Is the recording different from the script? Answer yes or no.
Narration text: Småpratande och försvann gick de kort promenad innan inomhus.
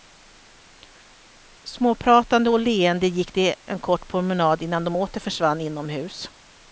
yes